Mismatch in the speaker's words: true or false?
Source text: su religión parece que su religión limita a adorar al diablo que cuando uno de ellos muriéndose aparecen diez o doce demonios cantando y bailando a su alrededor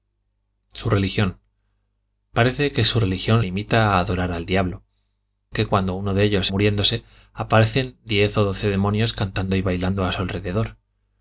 false